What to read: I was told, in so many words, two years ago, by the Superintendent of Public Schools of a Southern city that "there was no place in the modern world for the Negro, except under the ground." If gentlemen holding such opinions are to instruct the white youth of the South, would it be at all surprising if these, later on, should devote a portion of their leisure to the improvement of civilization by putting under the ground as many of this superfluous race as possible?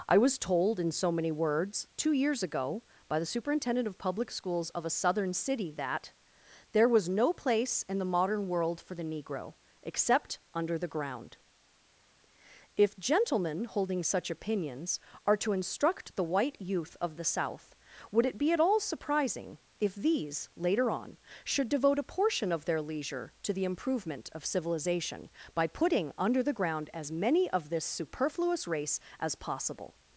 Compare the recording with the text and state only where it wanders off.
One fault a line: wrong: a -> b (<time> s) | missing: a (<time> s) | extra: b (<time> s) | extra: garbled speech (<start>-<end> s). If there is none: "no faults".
no faults